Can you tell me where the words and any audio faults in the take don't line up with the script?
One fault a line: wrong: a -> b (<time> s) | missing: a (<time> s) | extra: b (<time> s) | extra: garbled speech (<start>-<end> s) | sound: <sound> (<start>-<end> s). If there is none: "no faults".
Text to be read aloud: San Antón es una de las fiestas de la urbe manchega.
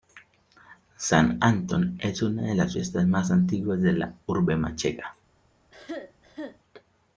extra: más antiguas (3.1 s)
sound: cough (5.7-6.6 s)